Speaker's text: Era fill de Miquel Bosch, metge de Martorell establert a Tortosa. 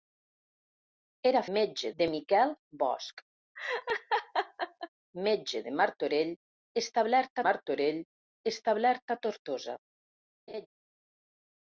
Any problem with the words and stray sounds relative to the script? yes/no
yes